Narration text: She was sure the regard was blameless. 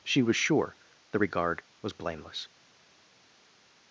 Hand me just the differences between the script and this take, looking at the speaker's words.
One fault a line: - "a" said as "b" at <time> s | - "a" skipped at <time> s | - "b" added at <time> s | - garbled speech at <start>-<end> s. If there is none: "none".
none